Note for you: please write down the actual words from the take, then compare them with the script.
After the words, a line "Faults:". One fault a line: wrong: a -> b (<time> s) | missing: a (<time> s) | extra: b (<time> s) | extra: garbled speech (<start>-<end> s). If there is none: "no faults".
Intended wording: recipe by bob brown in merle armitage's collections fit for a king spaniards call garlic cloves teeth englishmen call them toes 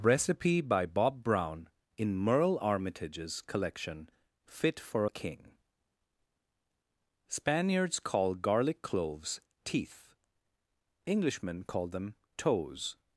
recipe by bob brown in merle armitage's collection fit for a king spaniards call garlic cloves teeth englishmen call them toes
Faults:
wrong: collections -> collection (3.4 s)